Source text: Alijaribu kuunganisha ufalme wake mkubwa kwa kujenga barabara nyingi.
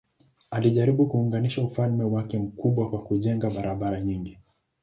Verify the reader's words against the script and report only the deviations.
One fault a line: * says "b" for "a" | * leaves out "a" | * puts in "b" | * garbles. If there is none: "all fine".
all fine